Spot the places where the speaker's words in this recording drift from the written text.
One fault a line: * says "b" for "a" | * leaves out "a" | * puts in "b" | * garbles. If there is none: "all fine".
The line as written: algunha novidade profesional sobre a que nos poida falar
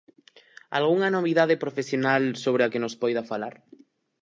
all fine